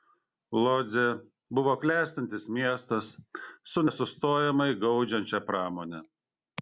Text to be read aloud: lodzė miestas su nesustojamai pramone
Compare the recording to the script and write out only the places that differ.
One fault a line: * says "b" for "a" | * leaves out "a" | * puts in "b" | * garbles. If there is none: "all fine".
* puts in "buvo klestintis"
* puts in "gaudžiančia"